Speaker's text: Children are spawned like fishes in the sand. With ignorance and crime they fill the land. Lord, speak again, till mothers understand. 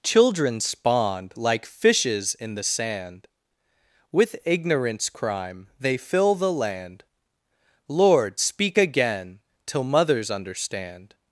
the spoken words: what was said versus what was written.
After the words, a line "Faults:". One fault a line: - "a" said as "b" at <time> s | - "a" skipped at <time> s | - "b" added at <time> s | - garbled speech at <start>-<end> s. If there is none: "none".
Children spawned like fishes in the sand. With ignorance crime they fill the land. Lord, speak again, till mothers understand.
Faults:
- "are" skipped at 0.6 s
- "and" skipped at 5.1 s